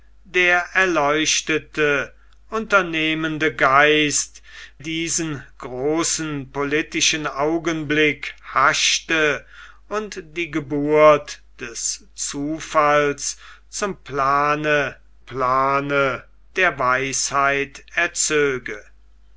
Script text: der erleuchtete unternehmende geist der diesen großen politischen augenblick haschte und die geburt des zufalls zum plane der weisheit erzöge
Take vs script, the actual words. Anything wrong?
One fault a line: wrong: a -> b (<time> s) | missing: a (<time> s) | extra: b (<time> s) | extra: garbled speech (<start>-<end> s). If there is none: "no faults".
missing: der (4.4 s)
extra: plane (15.2 s)